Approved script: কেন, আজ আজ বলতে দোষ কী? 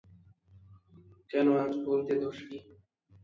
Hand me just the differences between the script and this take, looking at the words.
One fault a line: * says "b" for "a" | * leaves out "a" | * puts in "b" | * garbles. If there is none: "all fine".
* leaves out "আজ"